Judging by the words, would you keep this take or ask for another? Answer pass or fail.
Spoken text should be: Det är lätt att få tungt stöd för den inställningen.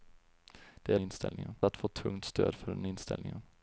fail